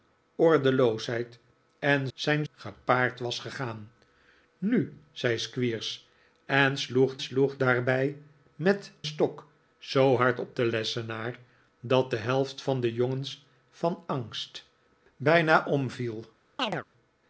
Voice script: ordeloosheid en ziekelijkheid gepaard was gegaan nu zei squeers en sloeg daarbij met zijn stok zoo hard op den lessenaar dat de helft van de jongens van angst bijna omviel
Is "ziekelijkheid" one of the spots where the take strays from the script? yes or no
yes